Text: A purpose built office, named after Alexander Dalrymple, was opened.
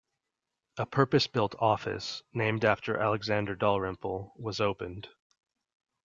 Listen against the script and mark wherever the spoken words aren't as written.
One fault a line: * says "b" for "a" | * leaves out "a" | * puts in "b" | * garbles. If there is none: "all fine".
all fine